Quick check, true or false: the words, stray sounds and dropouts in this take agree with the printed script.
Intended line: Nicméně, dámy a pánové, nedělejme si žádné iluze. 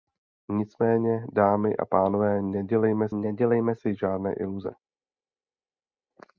false